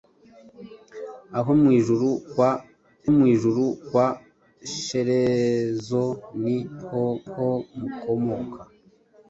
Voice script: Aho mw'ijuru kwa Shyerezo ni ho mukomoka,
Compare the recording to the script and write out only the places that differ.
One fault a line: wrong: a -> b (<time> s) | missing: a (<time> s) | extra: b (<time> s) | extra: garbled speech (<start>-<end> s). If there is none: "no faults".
extra: mw'ijuru kwa (3.1 s)
extra: ho (7.3 s)